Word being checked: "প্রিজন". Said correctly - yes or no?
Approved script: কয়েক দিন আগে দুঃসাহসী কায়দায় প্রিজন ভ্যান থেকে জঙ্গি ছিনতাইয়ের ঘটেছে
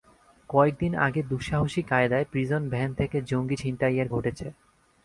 yes